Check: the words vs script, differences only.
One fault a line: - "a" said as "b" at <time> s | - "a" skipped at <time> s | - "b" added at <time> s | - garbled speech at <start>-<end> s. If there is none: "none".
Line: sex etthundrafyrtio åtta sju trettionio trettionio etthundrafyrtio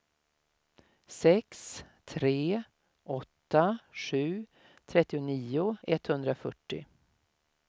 - "etthundrafyrtio" said as "tre" at 2.0 s
- "trettionio" skipped at 5.8 s